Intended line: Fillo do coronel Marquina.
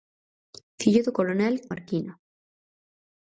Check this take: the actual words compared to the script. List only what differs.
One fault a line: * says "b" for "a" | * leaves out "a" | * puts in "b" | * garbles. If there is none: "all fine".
all fine